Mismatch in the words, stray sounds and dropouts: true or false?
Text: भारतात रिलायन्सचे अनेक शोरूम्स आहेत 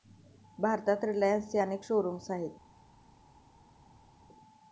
false